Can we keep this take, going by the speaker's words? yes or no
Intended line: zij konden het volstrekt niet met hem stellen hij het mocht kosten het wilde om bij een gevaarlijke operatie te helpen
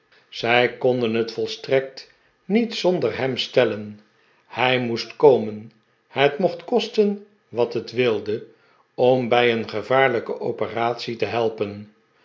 no